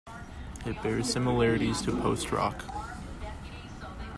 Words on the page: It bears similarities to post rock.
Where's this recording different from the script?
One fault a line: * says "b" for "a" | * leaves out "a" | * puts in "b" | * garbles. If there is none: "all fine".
all fine